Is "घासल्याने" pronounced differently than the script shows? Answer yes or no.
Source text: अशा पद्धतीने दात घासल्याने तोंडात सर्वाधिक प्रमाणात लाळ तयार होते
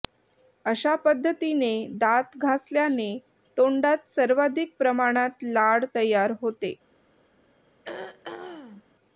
no